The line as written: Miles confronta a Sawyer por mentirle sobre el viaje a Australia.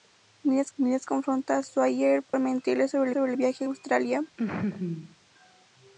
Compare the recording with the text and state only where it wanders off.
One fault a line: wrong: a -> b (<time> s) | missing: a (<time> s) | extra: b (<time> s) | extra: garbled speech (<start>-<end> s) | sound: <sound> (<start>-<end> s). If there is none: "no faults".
extra: miles (0.7 s)
sound: dropout (2.3-2.3 s)
extra: sobre (3.1 s)
sound: laugh (4.4-5.2 s)